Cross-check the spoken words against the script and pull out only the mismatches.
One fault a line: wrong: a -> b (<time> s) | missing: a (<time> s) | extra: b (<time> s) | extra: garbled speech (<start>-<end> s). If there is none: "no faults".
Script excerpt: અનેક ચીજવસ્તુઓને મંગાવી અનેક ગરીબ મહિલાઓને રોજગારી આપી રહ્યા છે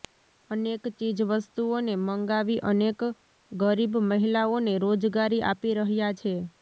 no faults